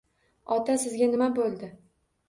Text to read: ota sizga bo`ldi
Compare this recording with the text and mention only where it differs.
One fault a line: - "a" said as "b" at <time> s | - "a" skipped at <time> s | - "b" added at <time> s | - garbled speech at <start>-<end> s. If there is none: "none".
- "nima" added at 1.1 s